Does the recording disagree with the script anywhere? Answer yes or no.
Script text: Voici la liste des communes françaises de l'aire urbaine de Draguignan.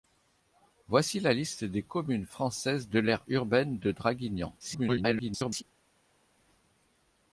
yes